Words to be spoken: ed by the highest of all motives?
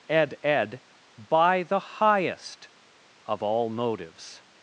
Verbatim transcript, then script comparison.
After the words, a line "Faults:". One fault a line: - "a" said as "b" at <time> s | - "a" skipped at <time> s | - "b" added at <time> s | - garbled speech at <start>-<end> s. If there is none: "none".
ed ed by the highest of all motives?
Faults:
- "ed" added at 0.4 s